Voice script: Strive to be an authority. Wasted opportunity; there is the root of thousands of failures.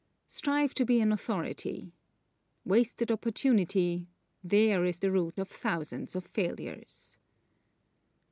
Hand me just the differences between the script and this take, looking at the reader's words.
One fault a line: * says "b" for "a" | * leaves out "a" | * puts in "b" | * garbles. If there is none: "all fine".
all fine